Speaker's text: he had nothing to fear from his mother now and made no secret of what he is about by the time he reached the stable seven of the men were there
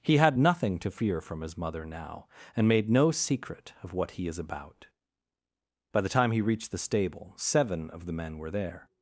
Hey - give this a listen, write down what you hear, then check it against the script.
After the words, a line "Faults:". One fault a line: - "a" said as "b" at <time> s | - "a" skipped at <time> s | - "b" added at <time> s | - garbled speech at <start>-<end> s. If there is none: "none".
he had nothing to fear from his mother now and made no secret of what he is about by the time he reached the stable seven of the men were there
Faults:
none